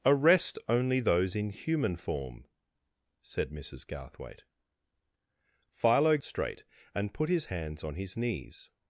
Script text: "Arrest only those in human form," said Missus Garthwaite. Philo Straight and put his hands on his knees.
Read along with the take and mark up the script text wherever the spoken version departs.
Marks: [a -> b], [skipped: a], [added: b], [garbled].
"Arrest only those in human form," said Missus Garthwaite. Philo Straight and put his hands on his knees.